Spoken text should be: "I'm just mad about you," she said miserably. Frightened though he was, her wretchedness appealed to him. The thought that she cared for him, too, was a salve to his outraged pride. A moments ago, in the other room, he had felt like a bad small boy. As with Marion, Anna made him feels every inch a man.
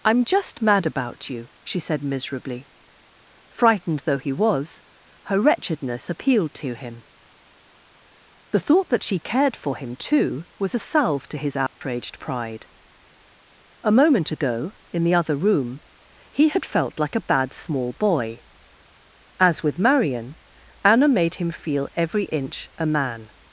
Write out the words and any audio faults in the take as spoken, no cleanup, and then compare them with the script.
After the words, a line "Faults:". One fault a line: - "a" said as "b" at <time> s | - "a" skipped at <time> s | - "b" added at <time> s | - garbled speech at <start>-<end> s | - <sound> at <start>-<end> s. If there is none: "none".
"I'm just mad about you," she said miserably. Frightened though he was, her wretchedness appealed to him. The thought that she cared for him, too, was a salve to his outraged pride. A moment ago, in the other room, he had felt like a bad small boy. As with Marion, Anna made him feel every inch a man.
Faults:
- dropout at 11.7-11.8 s
- "moments" said as "moment" at 13.9 s
- "feels" said as "feel" at 21.5 s